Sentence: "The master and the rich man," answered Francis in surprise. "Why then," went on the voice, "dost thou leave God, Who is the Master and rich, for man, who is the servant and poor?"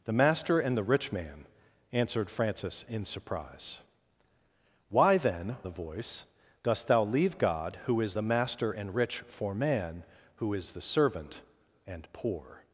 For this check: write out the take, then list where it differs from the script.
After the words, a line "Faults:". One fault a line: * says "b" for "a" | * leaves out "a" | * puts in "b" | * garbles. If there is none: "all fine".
"The master and the rich man," answered Francis in surprise. "Why then," the voice, "dost thou leave God, Who is the Master and rich, for man, who is the servant and poor?"
Faults:
* leaves out "went on"